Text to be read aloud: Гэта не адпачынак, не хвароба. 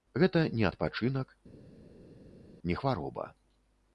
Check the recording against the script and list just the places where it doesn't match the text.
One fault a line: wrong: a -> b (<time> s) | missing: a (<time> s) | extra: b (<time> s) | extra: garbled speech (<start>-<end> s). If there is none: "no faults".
no faults